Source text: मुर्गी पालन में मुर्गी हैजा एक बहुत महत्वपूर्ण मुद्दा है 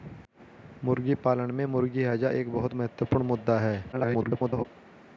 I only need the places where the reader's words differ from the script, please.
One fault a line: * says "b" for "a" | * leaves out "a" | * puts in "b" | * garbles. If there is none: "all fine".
* garbles